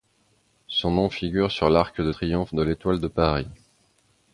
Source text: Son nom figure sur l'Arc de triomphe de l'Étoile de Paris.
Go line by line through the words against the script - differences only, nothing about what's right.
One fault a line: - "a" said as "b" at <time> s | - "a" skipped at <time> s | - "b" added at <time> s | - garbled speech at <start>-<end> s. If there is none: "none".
none